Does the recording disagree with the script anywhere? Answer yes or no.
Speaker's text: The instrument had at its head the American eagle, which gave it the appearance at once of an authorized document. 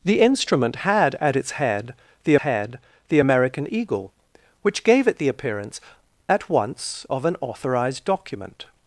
yes